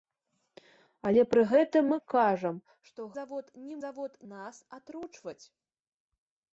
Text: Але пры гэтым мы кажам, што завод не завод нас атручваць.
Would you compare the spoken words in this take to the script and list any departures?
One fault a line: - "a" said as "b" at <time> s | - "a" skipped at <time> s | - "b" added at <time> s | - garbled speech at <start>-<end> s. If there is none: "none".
none